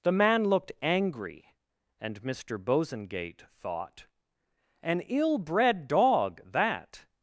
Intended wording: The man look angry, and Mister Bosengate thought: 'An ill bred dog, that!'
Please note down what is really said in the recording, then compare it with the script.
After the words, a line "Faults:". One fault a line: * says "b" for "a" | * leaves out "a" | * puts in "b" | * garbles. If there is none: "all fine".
The man looked angry, and Mister Bosengate thought: 'An ill bred dog, that!'
Faults:
* says "looked" for "look"